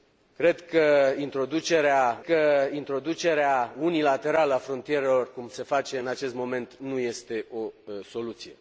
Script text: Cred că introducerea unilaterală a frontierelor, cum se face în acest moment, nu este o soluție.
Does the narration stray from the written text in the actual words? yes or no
yes